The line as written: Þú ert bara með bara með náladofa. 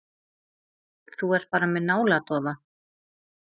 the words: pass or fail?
fail